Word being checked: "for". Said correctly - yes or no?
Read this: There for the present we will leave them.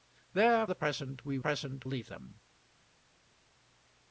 no